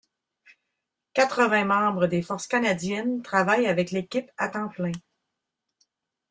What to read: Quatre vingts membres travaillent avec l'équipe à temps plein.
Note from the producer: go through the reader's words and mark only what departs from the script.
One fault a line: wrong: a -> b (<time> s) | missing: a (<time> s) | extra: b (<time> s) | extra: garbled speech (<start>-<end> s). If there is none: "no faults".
extra: des Forces canadiennes (2.1 s)